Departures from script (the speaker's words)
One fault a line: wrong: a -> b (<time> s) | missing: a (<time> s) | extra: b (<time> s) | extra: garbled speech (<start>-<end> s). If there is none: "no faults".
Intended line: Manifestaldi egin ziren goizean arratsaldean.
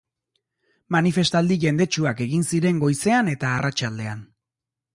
extra: jendetsuak (1.6 s)
extra: eta (3.3 s)